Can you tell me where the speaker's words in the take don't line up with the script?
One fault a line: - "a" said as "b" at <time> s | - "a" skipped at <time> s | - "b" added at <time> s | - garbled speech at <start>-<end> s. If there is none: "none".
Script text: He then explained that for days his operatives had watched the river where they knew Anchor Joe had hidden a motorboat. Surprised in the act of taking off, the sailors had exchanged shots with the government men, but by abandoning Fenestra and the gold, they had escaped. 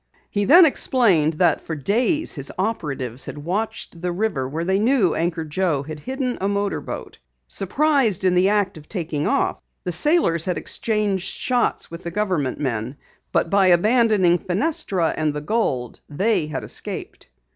none